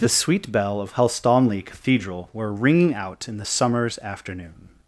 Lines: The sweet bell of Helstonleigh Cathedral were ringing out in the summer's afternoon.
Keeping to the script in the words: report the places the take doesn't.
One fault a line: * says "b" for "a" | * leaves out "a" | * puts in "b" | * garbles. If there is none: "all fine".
all fine